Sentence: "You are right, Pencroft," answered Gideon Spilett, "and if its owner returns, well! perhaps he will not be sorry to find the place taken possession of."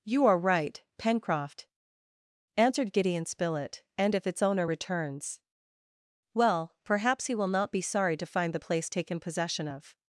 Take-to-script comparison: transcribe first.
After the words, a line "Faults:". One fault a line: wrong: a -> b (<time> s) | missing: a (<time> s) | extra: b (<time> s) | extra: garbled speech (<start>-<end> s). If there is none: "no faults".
"You are right, Pencroft," answered Gideon Spilett, "and if its owner returns, well! perhaps he will not be sorry to find the place taken possession of."
Faults:
no faults